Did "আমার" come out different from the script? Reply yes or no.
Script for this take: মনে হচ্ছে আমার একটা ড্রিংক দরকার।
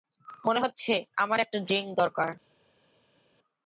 no